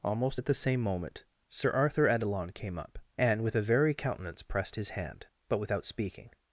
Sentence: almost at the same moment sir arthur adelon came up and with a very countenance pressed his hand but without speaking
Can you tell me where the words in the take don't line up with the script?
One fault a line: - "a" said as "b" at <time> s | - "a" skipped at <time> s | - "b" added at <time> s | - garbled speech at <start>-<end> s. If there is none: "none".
none